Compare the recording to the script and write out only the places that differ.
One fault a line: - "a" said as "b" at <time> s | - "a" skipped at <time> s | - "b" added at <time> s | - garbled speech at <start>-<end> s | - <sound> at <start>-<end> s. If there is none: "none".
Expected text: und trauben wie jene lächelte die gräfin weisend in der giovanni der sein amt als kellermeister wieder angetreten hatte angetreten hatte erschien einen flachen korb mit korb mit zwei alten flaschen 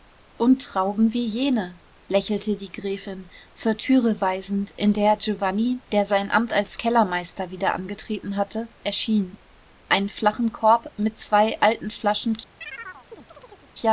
- "zur türe" added at 3.5 s
- "angetreten hatte" skipped at 8.7 s
- "korb mit" skipped at 11.2 s
- chirp at 12.6-13.7 s